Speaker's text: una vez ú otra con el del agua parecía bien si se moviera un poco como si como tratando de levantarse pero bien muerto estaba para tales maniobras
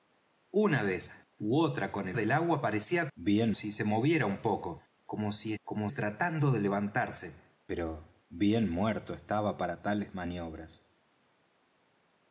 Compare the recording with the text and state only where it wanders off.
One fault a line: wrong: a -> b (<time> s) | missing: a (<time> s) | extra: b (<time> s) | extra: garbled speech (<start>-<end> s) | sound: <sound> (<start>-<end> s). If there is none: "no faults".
no faults